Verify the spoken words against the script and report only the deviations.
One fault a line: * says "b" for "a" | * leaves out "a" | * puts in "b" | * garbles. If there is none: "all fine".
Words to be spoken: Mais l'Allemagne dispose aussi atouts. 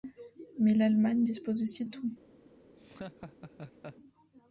all fine